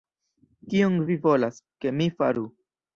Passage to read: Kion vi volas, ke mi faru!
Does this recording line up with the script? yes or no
yes